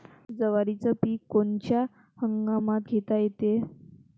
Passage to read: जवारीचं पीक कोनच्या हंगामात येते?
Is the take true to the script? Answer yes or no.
no